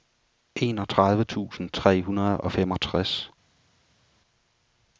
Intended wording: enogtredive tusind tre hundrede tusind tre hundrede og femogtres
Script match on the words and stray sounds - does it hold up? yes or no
no